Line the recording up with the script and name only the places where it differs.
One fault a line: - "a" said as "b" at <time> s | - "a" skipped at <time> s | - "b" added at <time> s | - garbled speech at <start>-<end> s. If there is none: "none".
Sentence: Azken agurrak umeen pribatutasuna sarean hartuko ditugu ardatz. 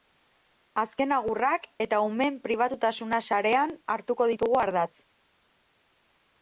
- "eta" added at 1.9 s